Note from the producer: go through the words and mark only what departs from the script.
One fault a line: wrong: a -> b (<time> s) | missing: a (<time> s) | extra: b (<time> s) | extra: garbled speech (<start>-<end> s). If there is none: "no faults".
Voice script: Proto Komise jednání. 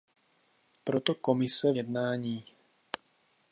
no faults